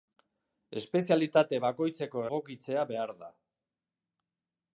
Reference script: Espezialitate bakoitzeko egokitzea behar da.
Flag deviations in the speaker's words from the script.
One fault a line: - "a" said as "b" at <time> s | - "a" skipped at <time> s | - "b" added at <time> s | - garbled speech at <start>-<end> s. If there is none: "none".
none